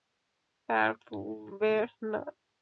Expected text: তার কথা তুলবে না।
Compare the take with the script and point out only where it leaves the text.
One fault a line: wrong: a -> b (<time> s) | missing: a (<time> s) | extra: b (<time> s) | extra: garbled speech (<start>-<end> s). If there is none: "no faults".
missing: কথা (0.9 s)